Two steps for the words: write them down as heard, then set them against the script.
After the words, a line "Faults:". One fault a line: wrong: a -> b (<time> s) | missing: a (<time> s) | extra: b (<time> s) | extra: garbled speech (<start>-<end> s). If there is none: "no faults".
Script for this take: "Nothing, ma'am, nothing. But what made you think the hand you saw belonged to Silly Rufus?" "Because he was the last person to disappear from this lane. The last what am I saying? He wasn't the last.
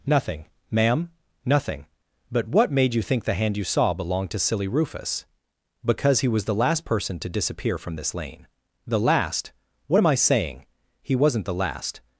"Nothing, ma'am, nothing. But what made you think the hand you saw belonged to Silly Rufus?" "Because he was the last person to disappear from this lane. The last what am I saying? He wasn't the last.
Faults:
no faults